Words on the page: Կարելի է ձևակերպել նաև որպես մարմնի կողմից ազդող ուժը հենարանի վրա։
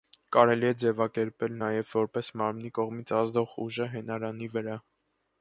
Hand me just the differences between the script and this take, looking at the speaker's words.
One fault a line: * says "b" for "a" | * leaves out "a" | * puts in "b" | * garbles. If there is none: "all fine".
all fine